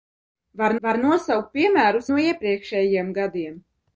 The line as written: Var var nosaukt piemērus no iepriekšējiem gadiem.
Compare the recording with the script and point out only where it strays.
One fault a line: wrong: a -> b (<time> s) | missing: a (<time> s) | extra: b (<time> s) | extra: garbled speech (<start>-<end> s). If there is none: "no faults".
no faults